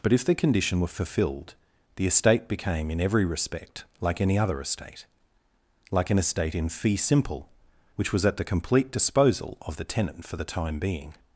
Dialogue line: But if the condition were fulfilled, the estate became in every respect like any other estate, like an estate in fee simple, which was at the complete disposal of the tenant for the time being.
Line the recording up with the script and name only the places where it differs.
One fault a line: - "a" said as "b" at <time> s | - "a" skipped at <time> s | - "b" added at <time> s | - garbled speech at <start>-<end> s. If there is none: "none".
none